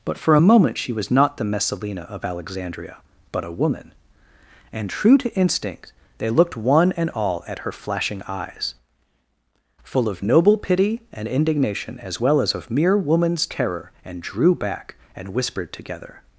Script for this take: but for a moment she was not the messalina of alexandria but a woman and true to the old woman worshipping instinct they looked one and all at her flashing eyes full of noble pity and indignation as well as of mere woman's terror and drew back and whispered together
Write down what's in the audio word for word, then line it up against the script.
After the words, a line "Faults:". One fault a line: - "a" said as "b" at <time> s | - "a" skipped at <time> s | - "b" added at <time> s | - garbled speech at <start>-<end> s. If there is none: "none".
but for a moment she was not the messalina of alexandria but a woman and true to instinct they looked one and all at her flashing eyes full of noble pity and indignation as well as of mere woman's terror and drew back and whispered together
Faults:
- "the old woman worshipping" skipped at 5.3 s